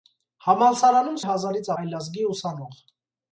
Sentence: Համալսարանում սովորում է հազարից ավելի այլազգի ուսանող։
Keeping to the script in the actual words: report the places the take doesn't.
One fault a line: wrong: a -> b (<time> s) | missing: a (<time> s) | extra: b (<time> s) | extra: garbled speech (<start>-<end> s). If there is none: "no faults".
missing: սովորում (1.2 s)
missing: ավելի (1.7 s)